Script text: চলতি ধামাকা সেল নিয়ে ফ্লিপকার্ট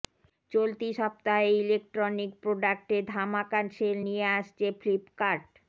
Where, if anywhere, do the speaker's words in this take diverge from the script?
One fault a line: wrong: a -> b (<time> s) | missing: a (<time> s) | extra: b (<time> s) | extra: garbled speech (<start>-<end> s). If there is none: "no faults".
extra: সপ্তাহে ইলেকট্রনিক প্রোডাক্টে (1.0 s)
extra: আসছে (4.4 s)